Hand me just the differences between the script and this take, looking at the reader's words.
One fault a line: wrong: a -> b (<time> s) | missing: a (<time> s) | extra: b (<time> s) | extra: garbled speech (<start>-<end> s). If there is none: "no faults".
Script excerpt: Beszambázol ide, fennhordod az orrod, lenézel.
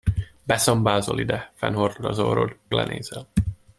no faults